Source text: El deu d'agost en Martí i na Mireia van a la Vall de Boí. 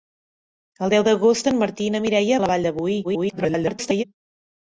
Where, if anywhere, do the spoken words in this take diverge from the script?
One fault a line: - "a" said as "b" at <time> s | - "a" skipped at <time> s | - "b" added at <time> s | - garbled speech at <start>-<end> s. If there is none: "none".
- "van" skipped at 2.4 s
- garbled speech at 3.0-4.0 s